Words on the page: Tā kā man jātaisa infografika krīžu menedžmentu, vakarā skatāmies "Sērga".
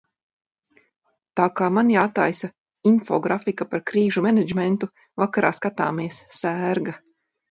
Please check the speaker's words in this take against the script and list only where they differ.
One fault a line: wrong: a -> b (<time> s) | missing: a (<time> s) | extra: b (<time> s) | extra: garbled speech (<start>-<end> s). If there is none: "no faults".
extra: par (3.7 s)